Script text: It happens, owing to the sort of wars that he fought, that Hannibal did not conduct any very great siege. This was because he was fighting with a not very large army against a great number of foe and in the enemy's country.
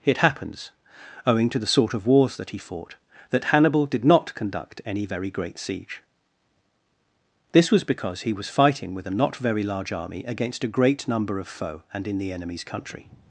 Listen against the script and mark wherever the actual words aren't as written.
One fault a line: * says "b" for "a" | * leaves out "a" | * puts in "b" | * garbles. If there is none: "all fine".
all fine